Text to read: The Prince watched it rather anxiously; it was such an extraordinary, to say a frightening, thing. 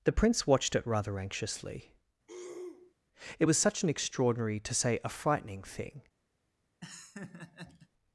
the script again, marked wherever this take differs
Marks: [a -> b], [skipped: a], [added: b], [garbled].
The Prince watched it rather anxiously; it was such an extraordinary, to say a frightening, thing.